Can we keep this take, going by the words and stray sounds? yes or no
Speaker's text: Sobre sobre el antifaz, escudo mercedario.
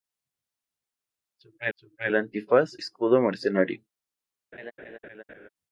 no